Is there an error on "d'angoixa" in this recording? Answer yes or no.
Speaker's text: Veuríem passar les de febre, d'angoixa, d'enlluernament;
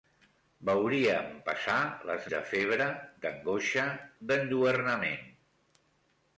no